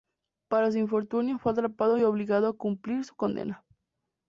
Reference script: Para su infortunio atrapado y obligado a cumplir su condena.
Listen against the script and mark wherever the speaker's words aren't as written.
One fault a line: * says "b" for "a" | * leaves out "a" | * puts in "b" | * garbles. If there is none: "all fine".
* puts in "fue"